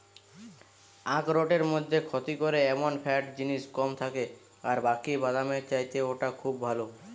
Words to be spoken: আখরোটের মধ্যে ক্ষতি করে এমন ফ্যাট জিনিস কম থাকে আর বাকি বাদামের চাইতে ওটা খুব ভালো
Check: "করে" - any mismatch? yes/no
no